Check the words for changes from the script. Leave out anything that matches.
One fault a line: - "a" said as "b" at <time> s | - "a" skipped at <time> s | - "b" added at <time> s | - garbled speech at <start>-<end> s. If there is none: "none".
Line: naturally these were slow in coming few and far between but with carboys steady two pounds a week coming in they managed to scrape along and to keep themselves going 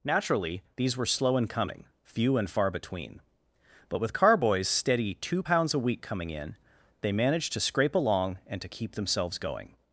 none